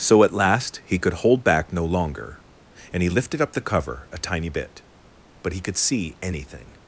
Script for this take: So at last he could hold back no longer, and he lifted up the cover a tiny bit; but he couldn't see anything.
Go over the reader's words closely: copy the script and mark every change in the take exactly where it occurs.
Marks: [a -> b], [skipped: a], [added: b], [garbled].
So at last he could hold back no longer, and he lifted up the cover a tiny bit; but he [couldn't -> could] see anything.